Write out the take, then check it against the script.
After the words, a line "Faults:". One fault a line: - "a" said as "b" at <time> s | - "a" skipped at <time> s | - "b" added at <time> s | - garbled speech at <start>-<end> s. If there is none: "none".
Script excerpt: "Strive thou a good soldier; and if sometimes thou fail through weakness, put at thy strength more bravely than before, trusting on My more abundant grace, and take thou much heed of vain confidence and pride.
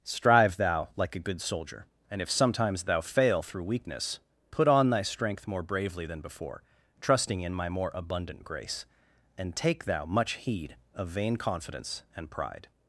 "Strive thou like a good soldier; and if sometimes thou fail through weakness, put on thy strength more bravely than before, trusting in My more abundant grace, and take thou much heed of vain confidence and pride.
Faults:
- "like" added at 0.9 s
- "at" said as "on" at 4.7 s
- "on" said as "in" at 7.4 s